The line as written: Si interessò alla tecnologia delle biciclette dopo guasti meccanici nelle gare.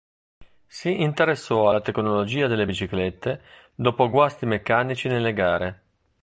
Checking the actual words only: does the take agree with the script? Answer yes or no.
yes